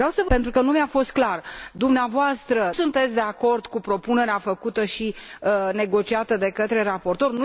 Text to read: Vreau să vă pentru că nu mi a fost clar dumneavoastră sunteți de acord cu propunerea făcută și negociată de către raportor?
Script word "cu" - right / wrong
right